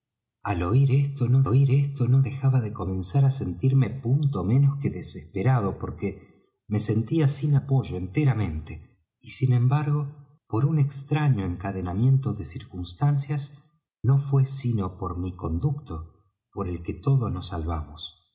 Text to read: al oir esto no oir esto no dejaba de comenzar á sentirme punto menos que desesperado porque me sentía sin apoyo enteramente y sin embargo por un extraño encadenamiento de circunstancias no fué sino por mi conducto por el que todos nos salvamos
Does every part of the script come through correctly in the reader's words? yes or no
yes